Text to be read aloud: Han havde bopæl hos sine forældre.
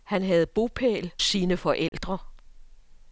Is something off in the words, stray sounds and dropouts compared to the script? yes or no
yes